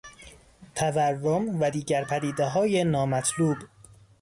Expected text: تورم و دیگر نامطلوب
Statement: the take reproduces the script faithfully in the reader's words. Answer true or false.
false